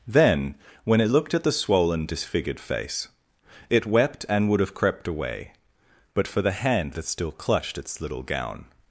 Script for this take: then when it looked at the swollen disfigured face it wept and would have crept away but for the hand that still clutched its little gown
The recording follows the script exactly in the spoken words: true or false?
true